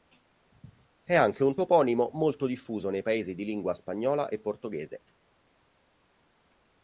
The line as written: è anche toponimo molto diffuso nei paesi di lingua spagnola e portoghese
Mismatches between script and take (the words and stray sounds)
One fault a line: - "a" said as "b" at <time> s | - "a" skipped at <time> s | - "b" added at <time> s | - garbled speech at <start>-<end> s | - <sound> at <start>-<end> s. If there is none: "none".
- "un" added at 1.4 s